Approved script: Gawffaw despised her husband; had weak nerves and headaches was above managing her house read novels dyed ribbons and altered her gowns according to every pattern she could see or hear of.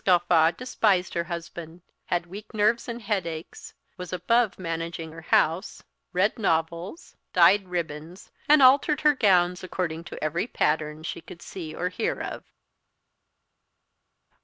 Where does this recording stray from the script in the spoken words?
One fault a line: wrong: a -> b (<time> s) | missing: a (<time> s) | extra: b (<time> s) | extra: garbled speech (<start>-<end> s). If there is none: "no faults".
no faults